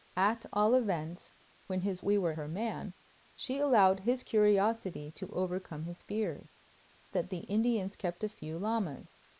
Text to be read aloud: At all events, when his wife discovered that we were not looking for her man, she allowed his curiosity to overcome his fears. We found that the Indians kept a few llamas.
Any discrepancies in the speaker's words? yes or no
yes